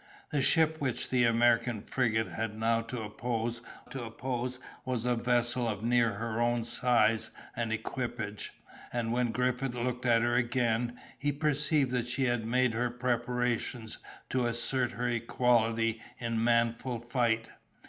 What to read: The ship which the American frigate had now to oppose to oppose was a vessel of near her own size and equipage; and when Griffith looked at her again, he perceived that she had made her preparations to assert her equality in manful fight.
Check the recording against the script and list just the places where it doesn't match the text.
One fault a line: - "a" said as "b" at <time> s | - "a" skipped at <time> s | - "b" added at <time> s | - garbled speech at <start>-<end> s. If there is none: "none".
none